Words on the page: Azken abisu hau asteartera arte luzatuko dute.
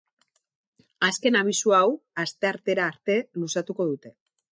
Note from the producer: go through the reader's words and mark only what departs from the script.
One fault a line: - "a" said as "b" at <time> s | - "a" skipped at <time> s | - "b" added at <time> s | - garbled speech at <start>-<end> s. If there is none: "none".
none